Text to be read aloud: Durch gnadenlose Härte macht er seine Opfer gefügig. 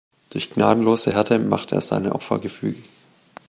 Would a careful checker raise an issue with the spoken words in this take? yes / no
no